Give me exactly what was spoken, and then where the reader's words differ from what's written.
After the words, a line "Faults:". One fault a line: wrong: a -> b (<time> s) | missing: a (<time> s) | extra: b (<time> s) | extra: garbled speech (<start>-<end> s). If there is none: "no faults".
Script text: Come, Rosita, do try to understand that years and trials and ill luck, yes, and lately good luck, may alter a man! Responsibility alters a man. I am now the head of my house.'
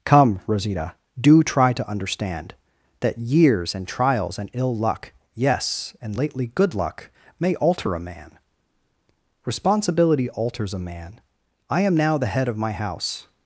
Come, Rosita, do try to understand that years and trials and ill luck, yes, and lately good luck, may alter a man! Responsibility alters a man. I am now the head of my house.'
Faults:
no faults